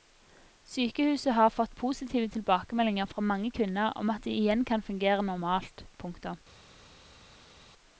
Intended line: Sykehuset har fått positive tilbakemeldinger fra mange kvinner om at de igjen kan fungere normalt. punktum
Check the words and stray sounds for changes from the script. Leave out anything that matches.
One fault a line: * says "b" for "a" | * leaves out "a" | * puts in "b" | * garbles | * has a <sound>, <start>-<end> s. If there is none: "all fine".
all fine